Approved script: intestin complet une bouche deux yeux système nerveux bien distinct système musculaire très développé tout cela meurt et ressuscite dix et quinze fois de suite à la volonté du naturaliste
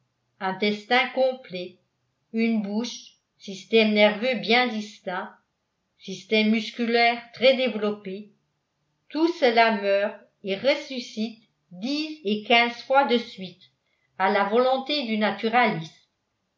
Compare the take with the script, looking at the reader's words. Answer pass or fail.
fail